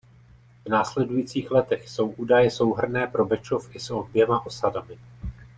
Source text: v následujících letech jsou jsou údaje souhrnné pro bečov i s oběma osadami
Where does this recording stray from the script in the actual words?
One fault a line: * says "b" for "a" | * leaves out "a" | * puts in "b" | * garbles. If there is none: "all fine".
* leaves out "jsou"